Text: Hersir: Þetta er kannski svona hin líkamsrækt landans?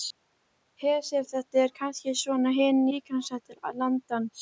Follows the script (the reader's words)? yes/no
yes